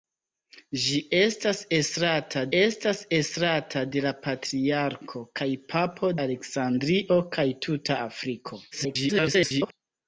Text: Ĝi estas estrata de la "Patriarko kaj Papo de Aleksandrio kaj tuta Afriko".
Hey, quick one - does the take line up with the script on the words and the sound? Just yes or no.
no